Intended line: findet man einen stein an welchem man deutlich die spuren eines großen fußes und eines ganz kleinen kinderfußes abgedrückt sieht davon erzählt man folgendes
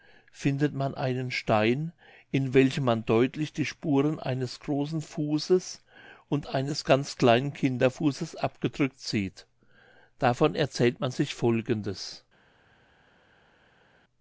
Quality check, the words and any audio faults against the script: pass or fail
fail